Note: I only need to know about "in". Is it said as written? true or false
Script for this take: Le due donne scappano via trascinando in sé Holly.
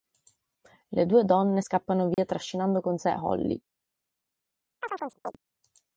false